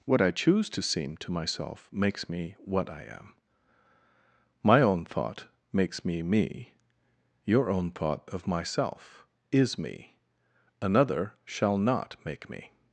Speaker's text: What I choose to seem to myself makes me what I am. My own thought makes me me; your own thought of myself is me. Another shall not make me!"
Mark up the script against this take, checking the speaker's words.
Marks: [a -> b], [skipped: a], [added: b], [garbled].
What I choose to seem to myself makes me what I am. My own thought makes me me; your own thought of myself is me. Another shall not make me!"